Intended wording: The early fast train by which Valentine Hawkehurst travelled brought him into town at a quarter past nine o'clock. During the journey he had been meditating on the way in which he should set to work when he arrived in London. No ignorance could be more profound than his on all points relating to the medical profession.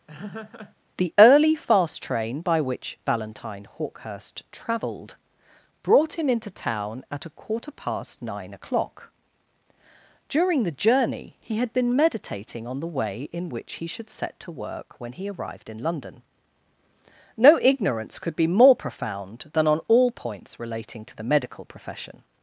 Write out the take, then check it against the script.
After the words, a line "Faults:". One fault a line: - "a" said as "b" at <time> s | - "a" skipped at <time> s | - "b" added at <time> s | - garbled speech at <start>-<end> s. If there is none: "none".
The early fast train by which Valentine Hawkehurst travelled brought him into town at a quarter past nine o'clock. During the journey he had been meditating on the way in which he should set to work when he arrived in London. No ignorance could be more profound than on all points relating to the medical profession.
Faults:
- "his" skipped at 19.7 s